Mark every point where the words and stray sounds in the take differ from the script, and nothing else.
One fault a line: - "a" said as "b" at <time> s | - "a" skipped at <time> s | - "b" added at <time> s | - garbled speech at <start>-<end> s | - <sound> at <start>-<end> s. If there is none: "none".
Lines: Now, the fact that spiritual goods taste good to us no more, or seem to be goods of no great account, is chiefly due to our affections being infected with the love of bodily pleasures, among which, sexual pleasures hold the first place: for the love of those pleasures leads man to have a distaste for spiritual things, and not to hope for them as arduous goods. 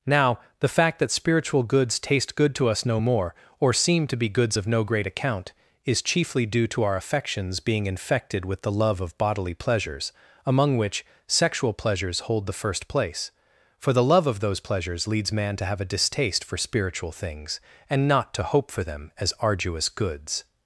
none